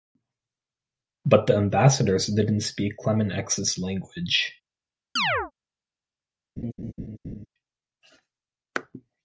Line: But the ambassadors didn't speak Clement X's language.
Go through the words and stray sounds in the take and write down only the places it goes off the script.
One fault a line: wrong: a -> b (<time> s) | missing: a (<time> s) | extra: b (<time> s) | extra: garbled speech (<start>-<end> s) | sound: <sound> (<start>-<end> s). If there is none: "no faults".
sound: chirp (5.2-5.5 s)
sound: laugh (6.6-7.5 s)